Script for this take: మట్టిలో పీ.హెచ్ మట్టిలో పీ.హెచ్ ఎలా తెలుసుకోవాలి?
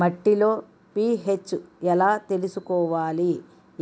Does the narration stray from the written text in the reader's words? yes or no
yes